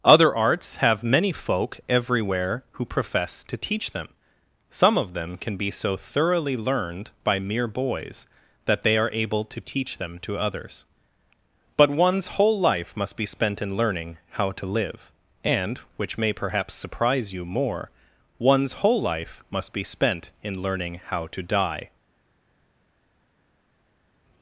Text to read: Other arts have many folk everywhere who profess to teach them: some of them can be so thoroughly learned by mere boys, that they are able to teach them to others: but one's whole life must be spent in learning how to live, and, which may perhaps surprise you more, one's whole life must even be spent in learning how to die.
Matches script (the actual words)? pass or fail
fail